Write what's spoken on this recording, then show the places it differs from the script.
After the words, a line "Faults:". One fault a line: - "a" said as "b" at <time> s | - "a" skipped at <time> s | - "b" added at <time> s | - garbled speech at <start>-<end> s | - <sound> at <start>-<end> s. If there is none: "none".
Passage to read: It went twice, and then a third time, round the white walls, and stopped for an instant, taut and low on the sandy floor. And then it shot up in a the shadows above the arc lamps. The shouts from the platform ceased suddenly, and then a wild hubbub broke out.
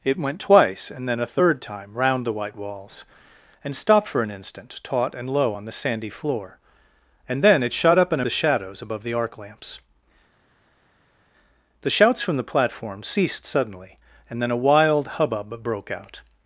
It went twice, and then a third time, round the white walls, and stopped for an instant, taut and low on the sandy floor. And then it shot up in a the shadows above the arc lamps. The shouts from the platform ceased suddenly, and then a wild hubbub broke out.
Faults:
none